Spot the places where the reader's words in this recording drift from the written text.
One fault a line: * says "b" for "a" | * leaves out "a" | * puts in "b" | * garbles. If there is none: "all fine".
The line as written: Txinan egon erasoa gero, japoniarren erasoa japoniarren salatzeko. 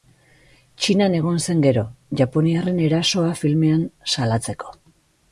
* says "zen" for "erasoa"
* says "filmean" for "japoniarren"